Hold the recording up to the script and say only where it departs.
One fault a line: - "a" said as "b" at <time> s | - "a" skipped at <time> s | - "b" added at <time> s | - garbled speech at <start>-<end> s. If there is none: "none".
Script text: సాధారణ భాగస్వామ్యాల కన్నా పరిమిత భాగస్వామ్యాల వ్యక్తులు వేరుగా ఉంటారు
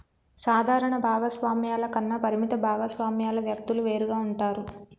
none